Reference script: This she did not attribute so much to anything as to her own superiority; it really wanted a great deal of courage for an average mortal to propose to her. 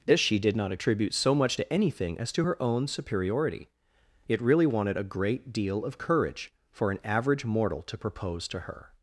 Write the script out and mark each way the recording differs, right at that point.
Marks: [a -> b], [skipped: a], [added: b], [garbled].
This she did not attribute so much to anything as to her own superiority; it really wanted a great deal of courage for an average mortal to propose to her.